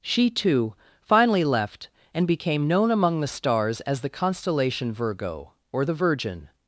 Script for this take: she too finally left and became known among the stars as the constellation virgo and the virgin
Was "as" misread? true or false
false